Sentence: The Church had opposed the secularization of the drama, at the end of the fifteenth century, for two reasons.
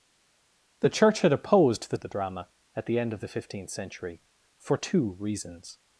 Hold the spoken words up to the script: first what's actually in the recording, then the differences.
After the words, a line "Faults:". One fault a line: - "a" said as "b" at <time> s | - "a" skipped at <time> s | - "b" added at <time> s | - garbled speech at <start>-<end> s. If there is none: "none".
The Church had opposed the of the drama, at the end of the fifteenth century, for two reasons.
Faults:
- "secularization" skipped at 2.0 s